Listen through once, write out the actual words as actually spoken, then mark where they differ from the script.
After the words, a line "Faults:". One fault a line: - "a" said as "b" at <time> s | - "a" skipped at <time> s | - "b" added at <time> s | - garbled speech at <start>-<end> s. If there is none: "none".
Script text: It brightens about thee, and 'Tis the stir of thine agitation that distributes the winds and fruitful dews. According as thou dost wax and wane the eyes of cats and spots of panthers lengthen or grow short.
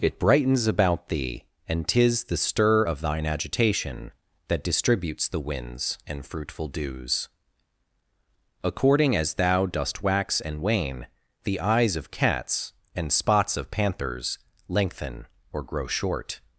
It brightens about thee, and 'Tis the stir of thine agitation that distributes the winds and fruitful dews. According as thou dost wax and wane the eyes of cats and spots of panthers lengthen or grow short.
Faults:
none